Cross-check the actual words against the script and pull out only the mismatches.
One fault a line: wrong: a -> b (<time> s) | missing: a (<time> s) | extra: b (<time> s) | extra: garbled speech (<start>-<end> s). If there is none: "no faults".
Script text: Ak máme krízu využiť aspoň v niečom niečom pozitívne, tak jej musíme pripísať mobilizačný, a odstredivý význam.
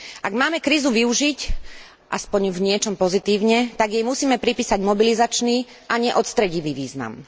missing: niečom (3.0 s)
extra: nie (6.0 s)